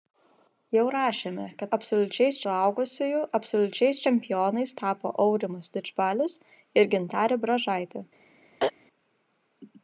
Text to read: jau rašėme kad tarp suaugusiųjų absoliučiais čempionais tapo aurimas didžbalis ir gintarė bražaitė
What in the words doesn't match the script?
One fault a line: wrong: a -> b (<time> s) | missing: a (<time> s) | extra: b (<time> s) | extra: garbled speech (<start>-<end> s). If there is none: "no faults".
wrong: tarp -> absoliučiais (1.8 s)